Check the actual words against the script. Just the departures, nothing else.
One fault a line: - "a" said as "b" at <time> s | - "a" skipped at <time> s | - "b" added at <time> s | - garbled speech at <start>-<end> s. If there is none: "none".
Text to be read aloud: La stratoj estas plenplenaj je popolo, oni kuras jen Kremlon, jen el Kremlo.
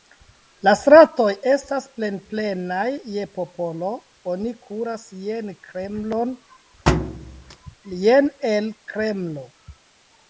none